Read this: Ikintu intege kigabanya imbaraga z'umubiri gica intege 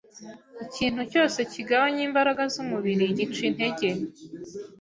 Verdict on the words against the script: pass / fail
fail